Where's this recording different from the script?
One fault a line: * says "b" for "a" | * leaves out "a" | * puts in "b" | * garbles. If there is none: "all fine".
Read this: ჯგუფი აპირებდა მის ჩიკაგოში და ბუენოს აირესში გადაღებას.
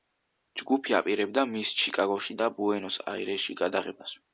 all fine